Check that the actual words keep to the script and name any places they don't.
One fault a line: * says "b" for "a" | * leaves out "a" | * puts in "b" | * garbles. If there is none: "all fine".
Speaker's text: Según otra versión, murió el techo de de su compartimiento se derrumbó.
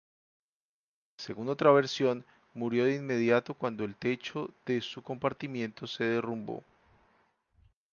* puts in "de inmediato cuando"
* leaves out "de"